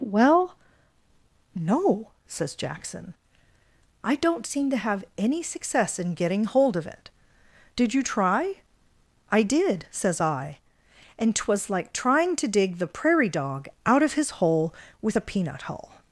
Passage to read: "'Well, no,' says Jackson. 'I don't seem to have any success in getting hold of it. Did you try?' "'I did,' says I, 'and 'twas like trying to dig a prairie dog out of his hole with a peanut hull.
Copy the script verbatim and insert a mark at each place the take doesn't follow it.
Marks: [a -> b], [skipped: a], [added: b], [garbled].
"'Well, no,' says Jackson. 'I don't seem to have any success in getting hold of it. Did you try?' "'I did,' says I, 'and 'twas like trying to dig [a -> the] prairie dog out of his hole with a peanut hull.